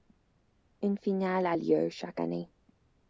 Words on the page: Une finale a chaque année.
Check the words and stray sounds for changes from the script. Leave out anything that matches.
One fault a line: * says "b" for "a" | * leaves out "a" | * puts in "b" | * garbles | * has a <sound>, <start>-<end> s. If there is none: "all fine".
* puts in "lieu"